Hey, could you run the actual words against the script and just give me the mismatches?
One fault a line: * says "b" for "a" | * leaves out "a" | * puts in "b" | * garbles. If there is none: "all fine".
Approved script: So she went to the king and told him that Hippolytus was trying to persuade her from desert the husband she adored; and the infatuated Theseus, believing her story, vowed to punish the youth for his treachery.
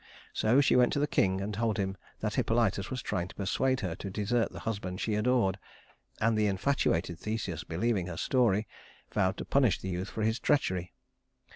* says "to" for "from"